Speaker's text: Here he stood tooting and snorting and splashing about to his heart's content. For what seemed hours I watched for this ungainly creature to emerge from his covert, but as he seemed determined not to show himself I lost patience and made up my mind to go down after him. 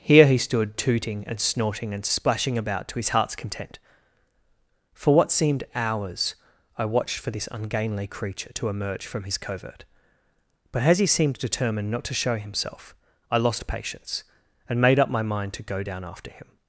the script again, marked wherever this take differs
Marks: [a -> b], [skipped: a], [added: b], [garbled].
Here he stood tooting and snorting and splashing about to his heart's content. For what seemed hours I watched for this ungainly creature to emerge from his covert, but as he seemed determined not to show himself I lost patience and made up my mind to go down after him.